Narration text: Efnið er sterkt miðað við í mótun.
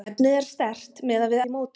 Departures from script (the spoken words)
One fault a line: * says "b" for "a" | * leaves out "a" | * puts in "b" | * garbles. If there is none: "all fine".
all fine